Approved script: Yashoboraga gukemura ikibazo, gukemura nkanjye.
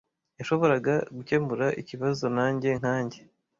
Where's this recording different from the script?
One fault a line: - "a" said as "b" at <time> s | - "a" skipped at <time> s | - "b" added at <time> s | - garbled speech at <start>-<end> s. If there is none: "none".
- "gukemura" said as "nanjye" at 2.4 s